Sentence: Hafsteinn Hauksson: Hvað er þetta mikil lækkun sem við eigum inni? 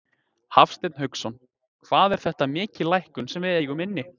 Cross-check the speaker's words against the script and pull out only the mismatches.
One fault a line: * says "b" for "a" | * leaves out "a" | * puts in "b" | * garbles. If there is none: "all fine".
all fine